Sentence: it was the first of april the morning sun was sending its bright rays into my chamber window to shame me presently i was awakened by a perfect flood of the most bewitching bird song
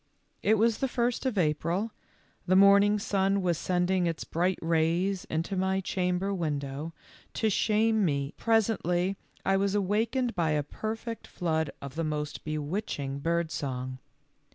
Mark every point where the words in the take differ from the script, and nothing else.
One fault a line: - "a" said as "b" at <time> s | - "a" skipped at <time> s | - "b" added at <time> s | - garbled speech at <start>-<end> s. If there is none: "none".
none